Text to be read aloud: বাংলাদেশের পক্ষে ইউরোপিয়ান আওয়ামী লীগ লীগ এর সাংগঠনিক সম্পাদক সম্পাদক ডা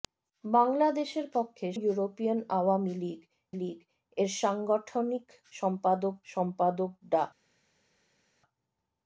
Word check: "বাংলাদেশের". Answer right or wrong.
right